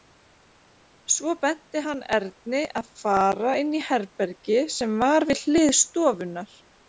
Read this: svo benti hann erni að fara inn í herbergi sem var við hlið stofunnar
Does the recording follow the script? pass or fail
pass